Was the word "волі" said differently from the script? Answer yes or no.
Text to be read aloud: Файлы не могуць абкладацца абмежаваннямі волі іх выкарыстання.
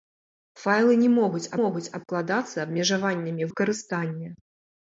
yes